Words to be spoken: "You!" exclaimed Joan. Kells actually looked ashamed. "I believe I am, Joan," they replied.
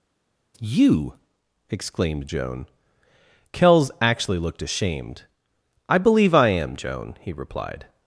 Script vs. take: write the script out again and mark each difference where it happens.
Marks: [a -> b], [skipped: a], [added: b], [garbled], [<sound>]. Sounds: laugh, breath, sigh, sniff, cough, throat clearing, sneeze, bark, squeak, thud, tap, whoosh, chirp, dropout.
"You!" exclaimed Joan. Kells actually looked ashamed. "I believe I am, Joan," [they -> he] replied.